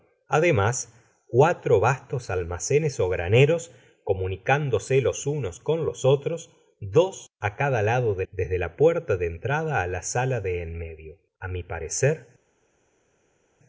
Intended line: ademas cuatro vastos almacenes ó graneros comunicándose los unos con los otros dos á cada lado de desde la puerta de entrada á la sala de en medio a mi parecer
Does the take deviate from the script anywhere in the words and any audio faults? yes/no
no